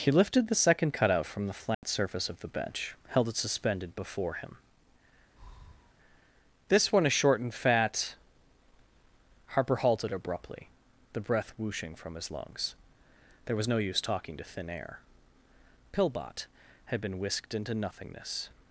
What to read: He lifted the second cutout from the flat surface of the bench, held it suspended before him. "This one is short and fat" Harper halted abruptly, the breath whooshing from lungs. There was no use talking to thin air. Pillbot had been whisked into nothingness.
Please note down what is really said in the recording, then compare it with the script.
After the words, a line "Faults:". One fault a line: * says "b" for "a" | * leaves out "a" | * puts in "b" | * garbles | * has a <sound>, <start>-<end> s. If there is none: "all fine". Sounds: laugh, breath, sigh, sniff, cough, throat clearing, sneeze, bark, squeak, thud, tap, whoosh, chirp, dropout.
He lifted the second cutout from the flat surface of the bench, held it suspended before him. "This one is short and fat" Harper halted abruptly, the breath whooshing from his lungs. There was no use talking to thin air. Pillbot had been whisked into nothingness.
Faults:
* has a dropout, 1.7-1.8 s
* has a breath, 5.3-5.9 s
* puts in "his"